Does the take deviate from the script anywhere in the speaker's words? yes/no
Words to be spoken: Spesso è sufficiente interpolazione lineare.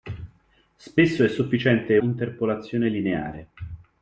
no